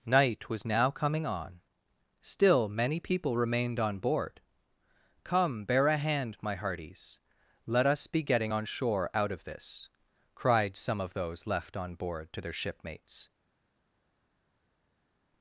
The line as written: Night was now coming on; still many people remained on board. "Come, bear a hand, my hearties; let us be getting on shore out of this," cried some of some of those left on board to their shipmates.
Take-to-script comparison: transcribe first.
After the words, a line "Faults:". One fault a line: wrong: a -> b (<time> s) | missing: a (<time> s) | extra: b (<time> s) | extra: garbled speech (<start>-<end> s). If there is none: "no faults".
Night was now coming on; still many people remained on board. "Come, bear a hand, my hearties; let us be getting on shore out of this," cried some of those left on board to their shipmates.
Faults:
missing: some of (11.1 s)